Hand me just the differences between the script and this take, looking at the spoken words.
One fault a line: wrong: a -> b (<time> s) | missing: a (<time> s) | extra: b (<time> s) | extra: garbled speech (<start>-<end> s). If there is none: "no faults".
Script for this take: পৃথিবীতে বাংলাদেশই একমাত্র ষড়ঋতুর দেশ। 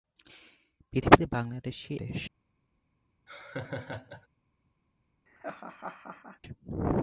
missing: একমাত্র ষড়ঋতুর (1.9 s)